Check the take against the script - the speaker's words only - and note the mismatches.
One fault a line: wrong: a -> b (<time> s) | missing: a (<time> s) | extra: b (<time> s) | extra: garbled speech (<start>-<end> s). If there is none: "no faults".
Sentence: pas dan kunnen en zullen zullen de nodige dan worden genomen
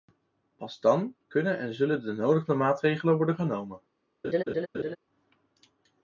missing: zullen (2.0 s)
wrong: dan -> maatregelen (2.5 s)